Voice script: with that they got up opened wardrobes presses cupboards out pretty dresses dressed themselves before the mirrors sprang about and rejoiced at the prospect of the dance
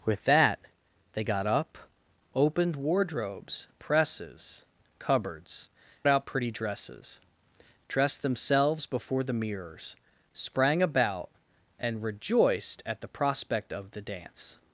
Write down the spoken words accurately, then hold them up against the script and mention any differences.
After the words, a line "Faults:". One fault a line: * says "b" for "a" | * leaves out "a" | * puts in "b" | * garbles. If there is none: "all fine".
with that they got up opened wardrobes presses cupboards out pretty dresses dressed themselves before the mirrors sprang about and rejoiced at the prospect of the dance
Faults:
all fine